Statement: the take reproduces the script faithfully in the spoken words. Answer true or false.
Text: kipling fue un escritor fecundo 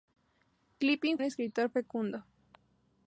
false